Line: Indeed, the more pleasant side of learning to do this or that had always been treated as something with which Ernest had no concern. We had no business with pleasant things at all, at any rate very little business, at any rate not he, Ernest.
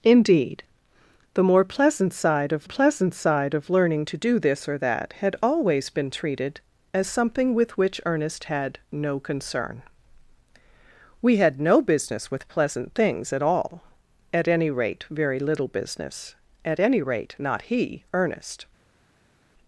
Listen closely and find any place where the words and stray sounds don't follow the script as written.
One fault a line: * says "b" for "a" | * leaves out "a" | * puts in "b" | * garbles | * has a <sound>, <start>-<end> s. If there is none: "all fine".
* puts in "pleasant side of"